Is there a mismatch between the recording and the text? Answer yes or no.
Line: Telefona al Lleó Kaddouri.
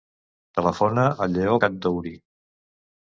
no